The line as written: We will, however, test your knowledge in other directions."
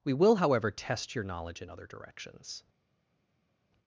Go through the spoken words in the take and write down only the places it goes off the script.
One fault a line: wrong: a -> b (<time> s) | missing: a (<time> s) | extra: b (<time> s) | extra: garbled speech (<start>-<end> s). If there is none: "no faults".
no faults